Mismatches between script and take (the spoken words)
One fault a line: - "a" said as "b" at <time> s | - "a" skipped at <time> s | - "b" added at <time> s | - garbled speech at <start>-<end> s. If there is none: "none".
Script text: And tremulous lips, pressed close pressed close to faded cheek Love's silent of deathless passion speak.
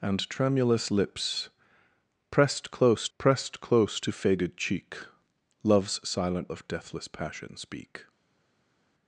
none